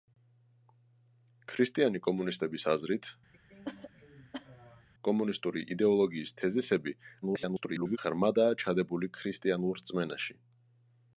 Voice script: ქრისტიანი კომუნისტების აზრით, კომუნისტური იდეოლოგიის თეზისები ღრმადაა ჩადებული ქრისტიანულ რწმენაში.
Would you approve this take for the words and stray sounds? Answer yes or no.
no